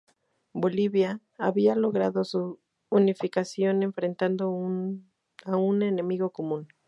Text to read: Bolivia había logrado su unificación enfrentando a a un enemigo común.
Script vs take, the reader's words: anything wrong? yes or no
yes